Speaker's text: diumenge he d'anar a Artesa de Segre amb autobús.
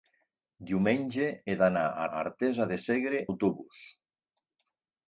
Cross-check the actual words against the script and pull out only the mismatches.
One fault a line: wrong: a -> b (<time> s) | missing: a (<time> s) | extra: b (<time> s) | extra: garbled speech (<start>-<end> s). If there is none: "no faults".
extra: a (2.1 s)
missing: amb (3.2 s)